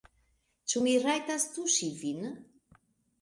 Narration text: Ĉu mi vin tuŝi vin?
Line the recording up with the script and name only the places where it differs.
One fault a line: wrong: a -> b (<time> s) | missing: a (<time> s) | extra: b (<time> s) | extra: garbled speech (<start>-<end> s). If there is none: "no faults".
wrong: vin -> rajtas (1.1 s)